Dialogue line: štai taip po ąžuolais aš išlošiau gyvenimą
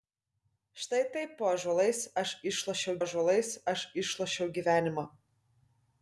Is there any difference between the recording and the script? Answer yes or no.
yes